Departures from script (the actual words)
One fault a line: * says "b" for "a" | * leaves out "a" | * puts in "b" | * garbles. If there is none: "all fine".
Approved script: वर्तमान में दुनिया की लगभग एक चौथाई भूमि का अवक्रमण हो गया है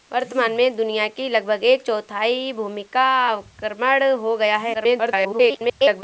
* garbles